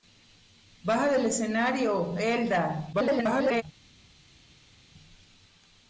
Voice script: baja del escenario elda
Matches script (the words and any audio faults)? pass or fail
fail